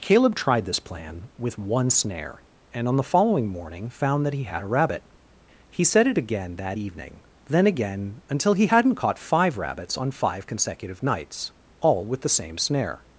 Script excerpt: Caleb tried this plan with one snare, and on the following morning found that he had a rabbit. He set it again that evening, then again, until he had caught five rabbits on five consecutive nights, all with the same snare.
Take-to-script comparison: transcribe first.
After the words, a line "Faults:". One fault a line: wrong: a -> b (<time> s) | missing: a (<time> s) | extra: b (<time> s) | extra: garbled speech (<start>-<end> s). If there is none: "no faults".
Caleb tried this plan with one snare, and on the following morning found that he had a rabbit. He set it again that evening, then again, until he hadn't caught five rabbits on five consecutive nights, all with the same snare.
Faults:
wrong: had -> hadn't (8.6 s)